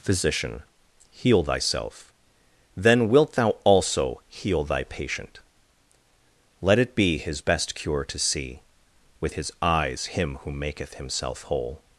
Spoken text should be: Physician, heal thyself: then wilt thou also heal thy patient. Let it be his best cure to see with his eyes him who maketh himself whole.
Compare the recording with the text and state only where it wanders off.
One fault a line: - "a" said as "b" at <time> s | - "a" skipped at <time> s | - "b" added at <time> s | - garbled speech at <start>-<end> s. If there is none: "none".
none